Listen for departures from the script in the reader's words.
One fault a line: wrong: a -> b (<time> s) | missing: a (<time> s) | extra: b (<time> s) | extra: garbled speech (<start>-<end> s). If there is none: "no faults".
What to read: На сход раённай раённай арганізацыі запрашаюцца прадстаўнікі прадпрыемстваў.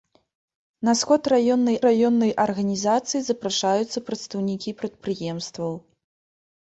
no faults